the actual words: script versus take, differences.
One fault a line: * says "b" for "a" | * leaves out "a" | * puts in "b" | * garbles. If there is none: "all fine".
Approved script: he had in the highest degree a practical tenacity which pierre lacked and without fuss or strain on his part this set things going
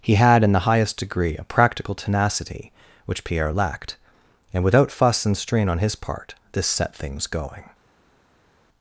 * says "and" for "or"